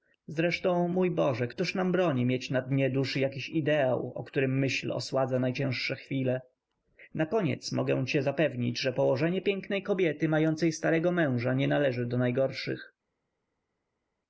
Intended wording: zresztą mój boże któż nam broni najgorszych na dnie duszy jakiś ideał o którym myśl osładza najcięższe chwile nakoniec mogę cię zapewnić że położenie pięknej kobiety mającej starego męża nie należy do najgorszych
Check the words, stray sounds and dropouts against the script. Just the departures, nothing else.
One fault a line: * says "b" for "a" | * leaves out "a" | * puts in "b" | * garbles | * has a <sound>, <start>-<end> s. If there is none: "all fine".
* says "mieć" for "najgorszych"